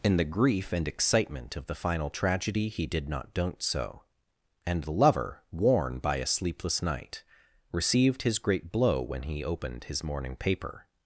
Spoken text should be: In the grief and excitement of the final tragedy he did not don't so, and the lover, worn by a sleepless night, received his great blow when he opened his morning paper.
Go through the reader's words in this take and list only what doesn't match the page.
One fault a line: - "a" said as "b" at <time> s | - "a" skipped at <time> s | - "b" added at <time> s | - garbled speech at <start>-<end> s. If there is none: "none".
none